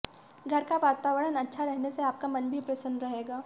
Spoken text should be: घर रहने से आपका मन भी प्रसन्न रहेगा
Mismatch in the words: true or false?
true